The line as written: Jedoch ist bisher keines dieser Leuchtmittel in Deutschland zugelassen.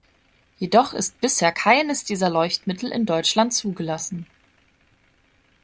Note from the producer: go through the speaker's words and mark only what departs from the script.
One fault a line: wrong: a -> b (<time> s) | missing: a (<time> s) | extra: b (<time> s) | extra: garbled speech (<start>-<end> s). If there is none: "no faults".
no faults